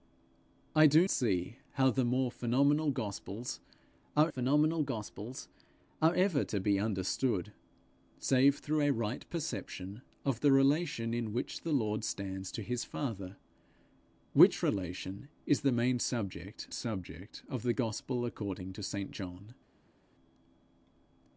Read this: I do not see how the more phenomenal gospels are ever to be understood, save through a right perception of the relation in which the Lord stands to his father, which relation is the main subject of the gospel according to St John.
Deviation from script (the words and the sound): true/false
true